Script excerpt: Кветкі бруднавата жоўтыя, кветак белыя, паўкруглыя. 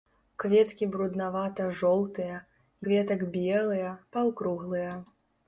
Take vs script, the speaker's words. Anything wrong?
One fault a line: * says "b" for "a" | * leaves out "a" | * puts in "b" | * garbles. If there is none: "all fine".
all fine